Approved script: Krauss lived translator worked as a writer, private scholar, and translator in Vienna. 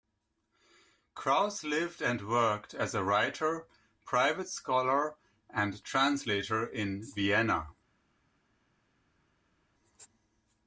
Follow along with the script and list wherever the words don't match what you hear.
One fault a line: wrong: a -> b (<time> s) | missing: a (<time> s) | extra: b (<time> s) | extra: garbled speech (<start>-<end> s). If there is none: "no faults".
wrong: translator -> and (2.0 s)